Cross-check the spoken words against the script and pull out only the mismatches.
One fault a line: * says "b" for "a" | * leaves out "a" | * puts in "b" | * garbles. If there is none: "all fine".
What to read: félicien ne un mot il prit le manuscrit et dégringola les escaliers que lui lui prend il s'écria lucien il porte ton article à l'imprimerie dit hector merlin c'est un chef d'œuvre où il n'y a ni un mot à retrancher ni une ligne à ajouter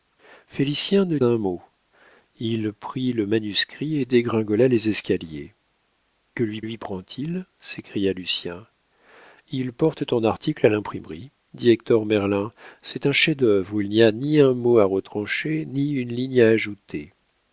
all fine